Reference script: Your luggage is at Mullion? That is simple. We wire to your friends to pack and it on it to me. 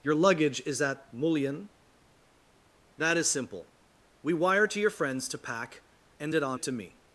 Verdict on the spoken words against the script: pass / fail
pass